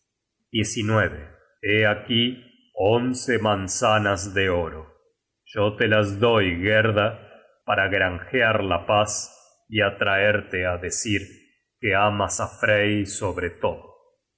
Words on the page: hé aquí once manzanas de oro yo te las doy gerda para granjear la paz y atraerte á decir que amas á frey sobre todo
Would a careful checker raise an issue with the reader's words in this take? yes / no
no